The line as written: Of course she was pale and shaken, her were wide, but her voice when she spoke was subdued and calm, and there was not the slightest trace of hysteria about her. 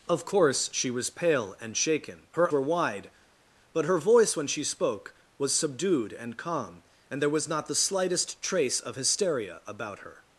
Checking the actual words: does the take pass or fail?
pass